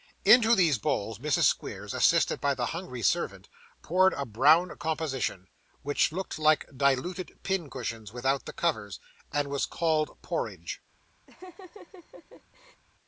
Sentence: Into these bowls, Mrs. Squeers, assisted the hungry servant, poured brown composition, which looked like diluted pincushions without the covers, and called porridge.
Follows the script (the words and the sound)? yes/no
no